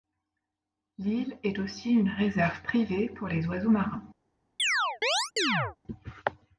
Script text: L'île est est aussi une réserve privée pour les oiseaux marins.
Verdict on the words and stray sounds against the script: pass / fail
fail